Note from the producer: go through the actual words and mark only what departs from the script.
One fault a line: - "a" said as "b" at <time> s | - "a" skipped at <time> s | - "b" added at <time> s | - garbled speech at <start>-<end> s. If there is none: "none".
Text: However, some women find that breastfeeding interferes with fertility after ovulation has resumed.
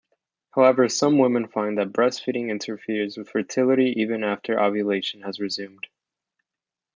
- "even" added at 4.0 s